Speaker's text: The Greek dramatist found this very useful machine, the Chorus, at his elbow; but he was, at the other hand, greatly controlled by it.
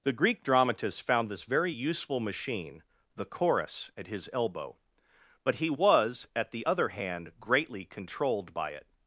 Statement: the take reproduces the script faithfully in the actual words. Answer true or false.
true